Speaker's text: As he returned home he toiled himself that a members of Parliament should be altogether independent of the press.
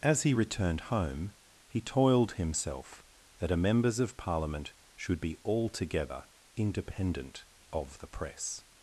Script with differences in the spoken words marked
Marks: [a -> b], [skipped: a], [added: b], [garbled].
As he returned home he toiled himself that a members of Parliament should be altogether independent of the press.